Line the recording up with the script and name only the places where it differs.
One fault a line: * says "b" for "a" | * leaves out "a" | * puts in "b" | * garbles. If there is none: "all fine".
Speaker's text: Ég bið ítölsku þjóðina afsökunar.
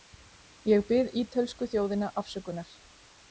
all fine